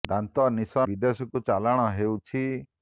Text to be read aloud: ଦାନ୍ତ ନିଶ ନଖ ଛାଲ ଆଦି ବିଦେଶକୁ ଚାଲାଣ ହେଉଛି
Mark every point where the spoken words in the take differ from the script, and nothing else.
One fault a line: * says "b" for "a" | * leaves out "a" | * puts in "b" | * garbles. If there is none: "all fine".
* leaves out "ନଖ ଛାଲ ଆଦି"